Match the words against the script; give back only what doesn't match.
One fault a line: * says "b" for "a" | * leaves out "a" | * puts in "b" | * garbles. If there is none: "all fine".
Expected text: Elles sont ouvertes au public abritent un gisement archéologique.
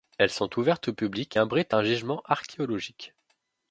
all fine